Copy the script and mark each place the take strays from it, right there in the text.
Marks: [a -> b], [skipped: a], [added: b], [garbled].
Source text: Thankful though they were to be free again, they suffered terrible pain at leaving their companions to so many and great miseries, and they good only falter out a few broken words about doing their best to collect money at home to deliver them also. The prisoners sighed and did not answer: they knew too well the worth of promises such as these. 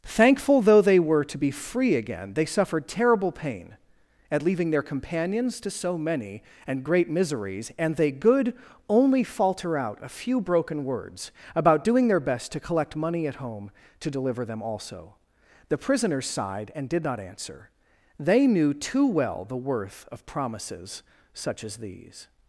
Thankful though they were to be free again, they suffered terrible pain at leaving their companions to so many and great miseries, and they good only falter out a few broken words about doing their best to collect money at home to deliver them also. The prisoners sighed and did not answer: they knew too well the worth of promises such as these.